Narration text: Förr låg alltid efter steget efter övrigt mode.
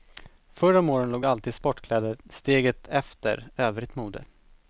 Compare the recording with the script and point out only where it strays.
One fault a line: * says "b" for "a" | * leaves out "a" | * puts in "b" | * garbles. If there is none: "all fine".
* puts in "om åren"
* says "sportkläder" for "efter"